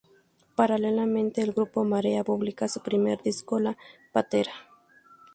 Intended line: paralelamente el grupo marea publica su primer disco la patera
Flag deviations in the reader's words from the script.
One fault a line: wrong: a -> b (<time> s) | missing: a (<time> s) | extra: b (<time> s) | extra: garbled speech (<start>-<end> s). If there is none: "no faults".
no faults